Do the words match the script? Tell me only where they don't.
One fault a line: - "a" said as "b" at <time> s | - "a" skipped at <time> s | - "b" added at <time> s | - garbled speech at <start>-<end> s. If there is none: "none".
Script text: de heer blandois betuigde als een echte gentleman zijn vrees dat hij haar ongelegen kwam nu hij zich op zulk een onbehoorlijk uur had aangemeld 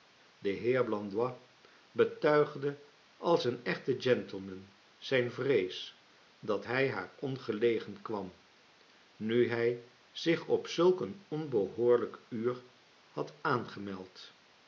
none